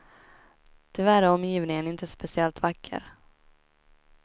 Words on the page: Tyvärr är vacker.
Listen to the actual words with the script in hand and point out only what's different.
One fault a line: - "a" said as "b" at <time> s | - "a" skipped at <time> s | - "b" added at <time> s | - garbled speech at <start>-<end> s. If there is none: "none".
- "omgivningen inte speciellt" added at 1.3 s